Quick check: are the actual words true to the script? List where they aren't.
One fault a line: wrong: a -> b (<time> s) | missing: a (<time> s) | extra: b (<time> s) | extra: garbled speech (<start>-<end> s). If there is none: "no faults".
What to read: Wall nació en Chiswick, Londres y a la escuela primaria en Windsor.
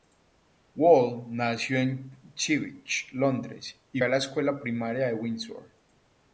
no faults